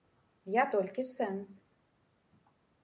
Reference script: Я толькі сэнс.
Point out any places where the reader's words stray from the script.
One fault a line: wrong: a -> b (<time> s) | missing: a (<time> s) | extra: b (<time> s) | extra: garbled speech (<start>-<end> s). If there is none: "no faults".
no faults